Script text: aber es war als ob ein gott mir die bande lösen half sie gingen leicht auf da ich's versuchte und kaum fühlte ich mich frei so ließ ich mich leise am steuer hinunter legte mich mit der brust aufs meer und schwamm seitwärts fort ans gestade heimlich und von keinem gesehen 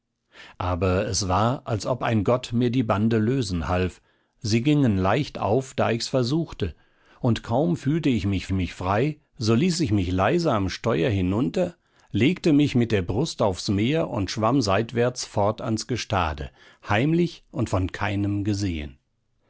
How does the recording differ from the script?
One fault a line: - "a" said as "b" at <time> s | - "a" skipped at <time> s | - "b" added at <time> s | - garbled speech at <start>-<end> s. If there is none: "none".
- "mich" added at 8.5 s